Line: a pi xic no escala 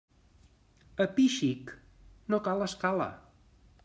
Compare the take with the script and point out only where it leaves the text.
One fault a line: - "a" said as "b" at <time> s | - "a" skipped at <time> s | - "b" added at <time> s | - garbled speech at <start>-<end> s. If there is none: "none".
- "cal" added at 2.5 s